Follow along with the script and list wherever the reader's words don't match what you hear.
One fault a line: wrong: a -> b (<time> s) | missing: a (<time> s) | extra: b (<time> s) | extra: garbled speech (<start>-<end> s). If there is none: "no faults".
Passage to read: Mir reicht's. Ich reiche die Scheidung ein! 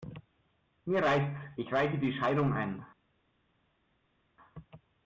no faults